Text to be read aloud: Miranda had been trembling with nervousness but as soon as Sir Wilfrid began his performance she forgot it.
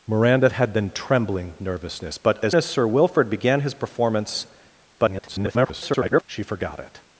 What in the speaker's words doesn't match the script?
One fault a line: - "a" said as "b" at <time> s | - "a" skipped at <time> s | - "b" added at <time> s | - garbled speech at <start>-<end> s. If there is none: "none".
- "with" skipped at 1.5 s
- "soon" skipped at 2.6 s
- garbled speech at 5.0-6.2 s